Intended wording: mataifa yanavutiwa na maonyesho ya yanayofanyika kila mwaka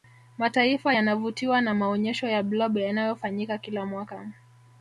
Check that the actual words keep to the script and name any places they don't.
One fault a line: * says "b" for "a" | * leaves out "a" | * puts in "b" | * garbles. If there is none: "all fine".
* puts in "blob"